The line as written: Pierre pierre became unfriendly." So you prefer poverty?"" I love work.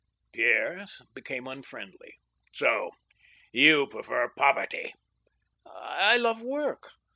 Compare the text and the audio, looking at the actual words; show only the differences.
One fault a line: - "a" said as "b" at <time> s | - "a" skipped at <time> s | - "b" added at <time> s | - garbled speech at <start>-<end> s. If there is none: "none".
- "pierre" skipped at 0.9 s